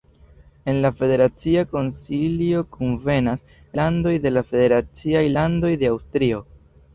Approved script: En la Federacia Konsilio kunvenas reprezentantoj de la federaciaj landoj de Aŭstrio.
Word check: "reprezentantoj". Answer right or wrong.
wrong